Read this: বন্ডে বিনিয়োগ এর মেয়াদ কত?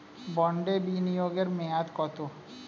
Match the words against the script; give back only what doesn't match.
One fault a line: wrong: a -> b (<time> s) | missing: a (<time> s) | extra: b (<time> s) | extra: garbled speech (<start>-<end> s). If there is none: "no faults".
no faults